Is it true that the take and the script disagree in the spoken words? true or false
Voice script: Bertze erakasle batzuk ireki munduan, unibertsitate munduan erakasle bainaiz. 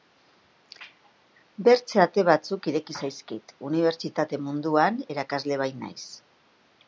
true